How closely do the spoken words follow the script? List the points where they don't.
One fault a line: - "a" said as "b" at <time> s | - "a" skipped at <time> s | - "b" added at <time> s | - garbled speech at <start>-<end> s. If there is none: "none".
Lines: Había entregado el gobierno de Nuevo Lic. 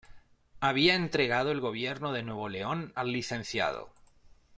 - "León al" added at 2.5 s